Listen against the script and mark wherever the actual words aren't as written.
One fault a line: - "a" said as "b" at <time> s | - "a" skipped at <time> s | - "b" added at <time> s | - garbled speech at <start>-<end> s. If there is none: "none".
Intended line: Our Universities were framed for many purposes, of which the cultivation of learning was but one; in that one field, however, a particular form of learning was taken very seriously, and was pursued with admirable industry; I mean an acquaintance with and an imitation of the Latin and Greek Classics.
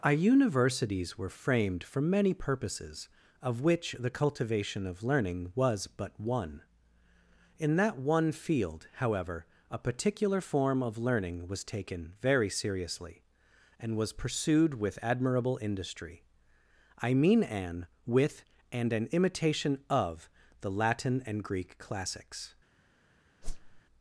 - "acquaintance" skipped at 17.9 s